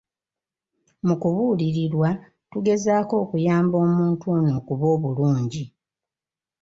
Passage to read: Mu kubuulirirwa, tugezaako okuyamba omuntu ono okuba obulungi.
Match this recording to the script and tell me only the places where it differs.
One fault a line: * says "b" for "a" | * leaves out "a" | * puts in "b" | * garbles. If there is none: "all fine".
all fine